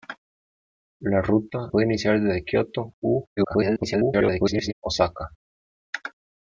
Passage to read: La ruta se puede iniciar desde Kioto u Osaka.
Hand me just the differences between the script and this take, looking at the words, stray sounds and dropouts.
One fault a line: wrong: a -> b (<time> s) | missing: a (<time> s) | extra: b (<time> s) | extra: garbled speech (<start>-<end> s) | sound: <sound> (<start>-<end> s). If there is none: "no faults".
missing: se (1.7 s)
extra: garbled speech (3.4-4.7 s)